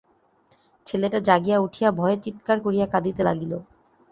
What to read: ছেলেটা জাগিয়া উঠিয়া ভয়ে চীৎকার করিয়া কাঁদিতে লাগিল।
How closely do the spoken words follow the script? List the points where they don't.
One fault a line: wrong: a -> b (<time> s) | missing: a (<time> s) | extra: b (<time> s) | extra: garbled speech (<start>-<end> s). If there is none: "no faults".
no faults